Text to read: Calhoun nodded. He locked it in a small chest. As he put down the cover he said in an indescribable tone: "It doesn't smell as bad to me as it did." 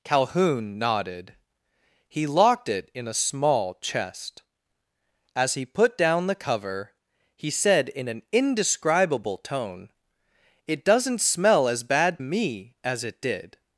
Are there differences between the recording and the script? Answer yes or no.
yes